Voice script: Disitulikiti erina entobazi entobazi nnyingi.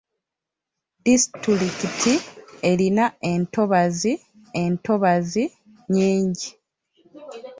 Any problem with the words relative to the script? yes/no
no